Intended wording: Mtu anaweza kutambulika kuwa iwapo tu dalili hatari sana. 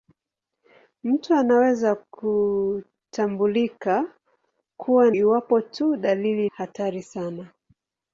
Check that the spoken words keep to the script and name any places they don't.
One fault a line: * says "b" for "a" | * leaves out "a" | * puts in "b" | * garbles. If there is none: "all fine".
all fine